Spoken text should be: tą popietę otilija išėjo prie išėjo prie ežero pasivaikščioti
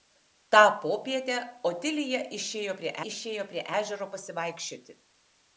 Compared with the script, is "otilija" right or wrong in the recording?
right